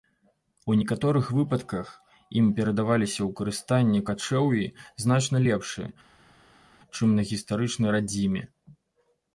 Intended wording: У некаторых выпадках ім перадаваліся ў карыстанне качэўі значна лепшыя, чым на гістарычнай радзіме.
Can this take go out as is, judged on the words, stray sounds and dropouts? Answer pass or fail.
pass